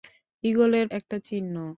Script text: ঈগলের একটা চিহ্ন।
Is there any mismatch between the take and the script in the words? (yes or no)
no